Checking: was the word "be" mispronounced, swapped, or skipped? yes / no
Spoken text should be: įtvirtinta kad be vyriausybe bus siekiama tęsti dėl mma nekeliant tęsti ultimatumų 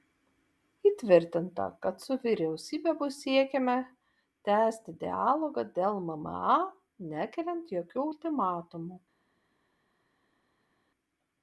yes